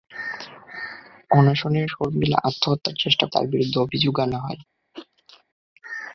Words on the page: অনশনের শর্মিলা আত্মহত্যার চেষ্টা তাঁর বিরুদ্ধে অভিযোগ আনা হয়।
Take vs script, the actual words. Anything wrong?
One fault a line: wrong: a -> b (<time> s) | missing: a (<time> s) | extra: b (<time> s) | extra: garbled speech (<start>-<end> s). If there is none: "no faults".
no faults